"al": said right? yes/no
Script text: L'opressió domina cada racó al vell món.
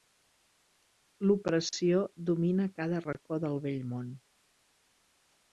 no